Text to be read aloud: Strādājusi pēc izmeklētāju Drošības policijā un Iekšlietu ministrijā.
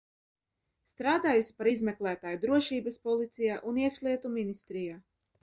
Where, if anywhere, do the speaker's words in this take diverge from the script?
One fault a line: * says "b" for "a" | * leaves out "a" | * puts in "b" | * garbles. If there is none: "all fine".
* says "par" for "pēc"